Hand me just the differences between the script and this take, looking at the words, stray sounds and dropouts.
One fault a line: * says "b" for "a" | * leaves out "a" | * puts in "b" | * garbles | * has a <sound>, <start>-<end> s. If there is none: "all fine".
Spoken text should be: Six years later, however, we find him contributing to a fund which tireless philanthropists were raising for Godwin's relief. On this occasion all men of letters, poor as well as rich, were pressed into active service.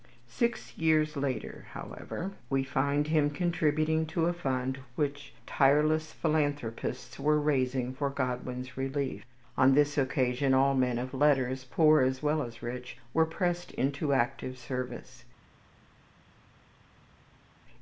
all fine